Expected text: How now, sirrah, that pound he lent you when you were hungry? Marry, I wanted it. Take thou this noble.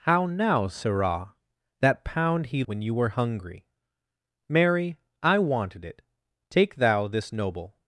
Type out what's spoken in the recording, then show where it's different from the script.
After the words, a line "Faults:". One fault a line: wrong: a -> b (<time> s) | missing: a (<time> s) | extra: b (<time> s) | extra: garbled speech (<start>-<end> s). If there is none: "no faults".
How now, sirrah, that pound he when you were hungry? Marry, I wanted it. Take thou this noble.
Faults:
missing: lent you (2.6 s)